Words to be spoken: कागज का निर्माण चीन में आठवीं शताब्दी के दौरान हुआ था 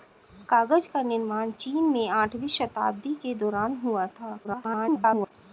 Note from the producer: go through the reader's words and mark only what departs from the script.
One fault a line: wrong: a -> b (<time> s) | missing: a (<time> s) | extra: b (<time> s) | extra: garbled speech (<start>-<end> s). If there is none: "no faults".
extra: garbled speech (4.4-5.3 s)